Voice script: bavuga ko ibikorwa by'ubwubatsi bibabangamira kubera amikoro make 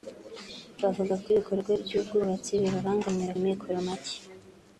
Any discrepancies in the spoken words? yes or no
yes